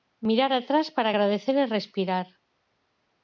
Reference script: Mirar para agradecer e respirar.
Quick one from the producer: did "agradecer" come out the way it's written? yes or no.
yes